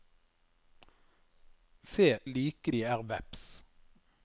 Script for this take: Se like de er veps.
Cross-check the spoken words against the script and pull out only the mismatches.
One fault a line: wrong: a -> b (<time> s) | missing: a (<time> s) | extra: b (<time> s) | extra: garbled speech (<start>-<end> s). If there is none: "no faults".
no faults